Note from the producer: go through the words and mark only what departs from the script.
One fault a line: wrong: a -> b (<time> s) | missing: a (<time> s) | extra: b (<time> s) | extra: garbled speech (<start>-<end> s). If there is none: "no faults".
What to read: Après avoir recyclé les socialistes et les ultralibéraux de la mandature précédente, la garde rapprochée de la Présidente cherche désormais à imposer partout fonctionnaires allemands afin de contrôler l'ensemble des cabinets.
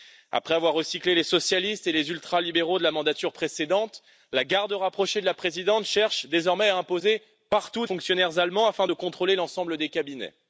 no faults